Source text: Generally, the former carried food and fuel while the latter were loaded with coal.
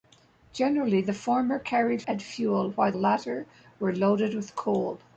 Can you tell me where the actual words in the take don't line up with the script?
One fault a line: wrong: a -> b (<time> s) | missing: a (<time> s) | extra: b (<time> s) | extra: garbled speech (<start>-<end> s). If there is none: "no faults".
missing: food (2.0 s)
missing: the (2.9 s)